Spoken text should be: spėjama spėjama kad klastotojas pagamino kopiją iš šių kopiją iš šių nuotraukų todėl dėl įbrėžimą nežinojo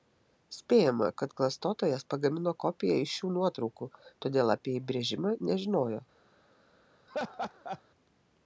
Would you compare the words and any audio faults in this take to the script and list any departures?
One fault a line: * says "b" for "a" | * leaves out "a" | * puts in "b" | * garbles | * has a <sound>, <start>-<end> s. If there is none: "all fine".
* leaves out "spėjama"
* leaves out "kopiją iš šių"
* says "apie" for "dėl"
* has a laugh, 7.1-7.8 s